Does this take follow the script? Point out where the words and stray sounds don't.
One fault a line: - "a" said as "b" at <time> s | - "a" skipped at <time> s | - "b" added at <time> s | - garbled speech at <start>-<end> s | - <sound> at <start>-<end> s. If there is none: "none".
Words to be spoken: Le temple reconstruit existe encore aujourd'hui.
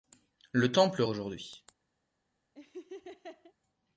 - "reconstruit existe encore" skipped at 1.0 s
- laugh at 2.5-3.5 s